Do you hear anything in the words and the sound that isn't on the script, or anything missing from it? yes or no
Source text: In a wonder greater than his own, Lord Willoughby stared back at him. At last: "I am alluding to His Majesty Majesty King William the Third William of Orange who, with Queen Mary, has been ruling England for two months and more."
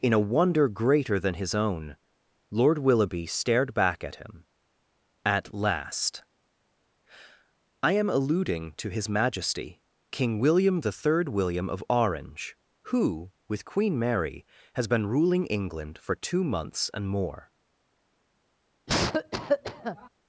yes